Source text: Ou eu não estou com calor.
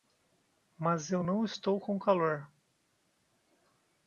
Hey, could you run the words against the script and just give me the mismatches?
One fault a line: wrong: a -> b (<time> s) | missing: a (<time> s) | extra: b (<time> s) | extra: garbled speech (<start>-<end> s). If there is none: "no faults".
wrong: Ou -> Mas (0.8 s)